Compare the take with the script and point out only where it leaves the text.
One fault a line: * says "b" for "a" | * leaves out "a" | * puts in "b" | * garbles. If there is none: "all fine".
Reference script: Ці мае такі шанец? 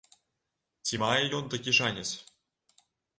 * puts in "ён"